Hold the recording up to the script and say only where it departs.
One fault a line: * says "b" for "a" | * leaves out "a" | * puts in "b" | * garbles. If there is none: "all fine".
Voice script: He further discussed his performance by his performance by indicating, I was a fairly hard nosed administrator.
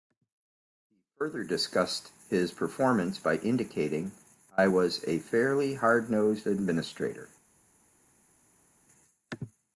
* leaves out "his performance by"